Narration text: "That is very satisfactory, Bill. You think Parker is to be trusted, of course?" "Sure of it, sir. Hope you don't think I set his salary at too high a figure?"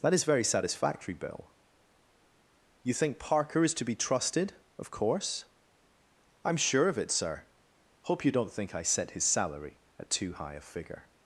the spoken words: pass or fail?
fail